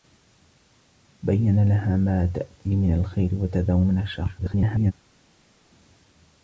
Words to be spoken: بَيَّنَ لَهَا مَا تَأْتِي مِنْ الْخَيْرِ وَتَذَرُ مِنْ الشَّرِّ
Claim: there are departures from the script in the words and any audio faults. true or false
true